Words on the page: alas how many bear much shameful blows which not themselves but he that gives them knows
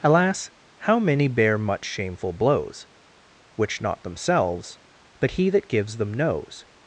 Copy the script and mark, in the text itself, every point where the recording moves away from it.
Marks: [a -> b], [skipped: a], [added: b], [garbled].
alas how many bear much shameful blows which not themselves but he that gives them knows